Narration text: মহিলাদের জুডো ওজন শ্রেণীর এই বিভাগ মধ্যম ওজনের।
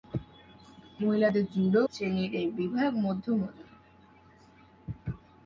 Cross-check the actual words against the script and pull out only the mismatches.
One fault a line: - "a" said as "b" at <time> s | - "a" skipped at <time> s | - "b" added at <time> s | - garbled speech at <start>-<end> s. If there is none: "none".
- "ওজন" skipped at 1.8 s